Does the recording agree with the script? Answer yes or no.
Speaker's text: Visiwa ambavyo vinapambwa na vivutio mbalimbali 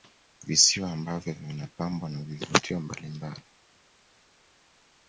yes